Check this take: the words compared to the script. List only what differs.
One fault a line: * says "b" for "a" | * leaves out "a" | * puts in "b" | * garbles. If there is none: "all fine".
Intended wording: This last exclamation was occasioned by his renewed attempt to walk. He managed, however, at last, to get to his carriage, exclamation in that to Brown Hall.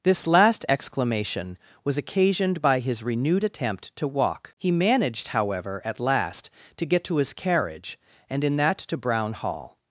* says "and" for "exclamation"